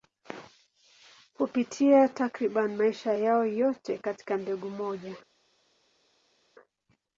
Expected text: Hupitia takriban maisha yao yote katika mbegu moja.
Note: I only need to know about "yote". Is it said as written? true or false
true